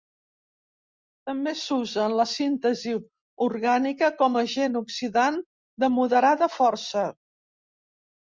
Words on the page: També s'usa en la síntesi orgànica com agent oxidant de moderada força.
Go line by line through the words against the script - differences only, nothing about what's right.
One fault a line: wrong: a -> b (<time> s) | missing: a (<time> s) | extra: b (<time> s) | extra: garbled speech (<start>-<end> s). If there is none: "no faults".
no faults